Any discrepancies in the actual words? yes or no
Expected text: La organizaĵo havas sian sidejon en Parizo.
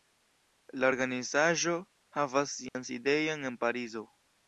no